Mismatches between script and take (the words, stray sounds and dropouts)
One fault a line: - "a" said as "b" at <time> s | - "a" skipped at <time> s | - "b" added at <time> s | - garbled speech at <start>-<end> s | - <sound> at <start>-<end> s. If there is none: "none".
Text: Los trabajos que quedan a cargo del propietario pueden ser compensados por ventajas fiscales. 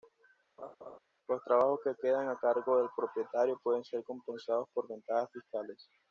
- laugh at 0.6-1.0 s